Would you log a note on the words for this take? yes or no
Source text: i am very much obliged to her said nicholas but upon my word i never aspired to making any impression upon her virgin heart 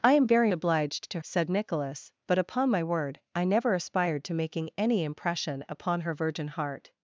yes